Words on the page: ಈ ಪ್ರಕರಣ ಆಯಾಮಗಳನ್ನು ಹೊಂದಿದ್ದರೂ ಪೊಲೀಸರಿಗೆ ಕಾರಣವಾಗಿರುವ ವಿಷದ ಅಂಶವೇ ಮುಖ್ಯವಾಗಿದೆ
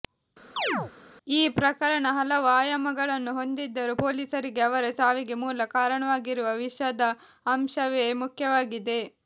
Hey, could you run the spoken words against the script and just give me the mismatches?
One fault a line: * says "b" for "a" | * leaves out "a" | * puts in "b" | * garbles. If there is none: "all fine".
* puts in "ಹಲವು"
* puts in "ಅವರ ಸಾವಿಗೆ ಮೂಲ"